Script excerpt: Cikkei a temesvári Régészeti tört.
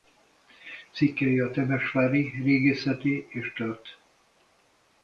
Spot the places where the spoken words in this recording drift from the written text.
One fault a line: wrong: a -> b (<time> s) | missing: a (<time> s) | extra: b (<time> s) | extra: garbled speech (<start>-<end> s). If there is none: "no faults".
extra: és (3.3 s)